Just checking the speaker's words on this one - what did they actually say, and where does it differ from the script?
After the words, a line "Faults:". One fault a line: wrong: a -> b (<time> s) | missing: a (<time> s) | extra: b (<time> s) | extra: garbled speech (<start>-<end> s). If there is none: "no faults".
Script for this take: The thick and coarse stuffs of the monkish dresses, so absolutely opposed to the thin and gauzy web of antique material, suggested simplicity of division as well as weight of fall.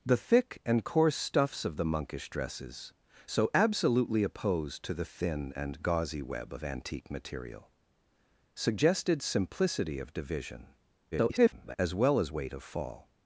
The thick and coarse stuffs of the monkish dresses, so absolutely opposed to the thin and gauzy web of antique material, suggested simplicity of division [garbled] as well as weight of fall.
Faults:
extra: garbled speech (11.1-11.8 s)